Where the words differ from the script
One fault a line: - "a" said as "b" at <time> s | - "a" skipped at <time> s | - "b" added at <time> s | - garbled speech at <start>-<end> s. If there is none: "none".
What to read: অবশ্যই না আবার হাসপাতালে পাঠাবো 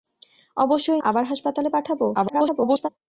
- "না" skipped at 1.0 s
- garbled speech at 2.1-2.9 s